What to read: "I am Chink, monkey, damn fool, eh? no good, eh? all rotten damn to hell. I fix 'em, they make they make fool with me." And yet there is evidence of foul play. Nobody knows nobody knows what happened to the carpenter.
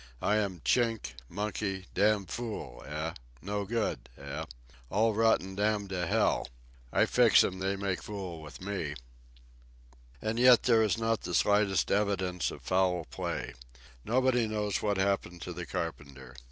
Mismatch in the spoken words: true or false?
true